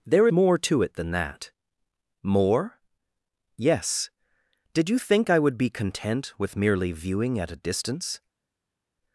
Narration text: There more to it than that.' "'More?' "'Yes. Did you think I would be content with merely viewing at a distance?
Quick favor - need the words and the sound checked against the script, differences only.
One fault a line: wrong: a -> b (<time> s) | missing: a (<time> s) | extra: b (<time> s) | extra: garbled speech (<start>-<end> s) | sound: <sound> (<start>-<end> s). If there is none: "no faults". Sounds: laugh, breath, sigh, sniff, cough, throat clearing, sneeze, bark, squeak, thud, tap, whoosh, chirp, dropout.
no faults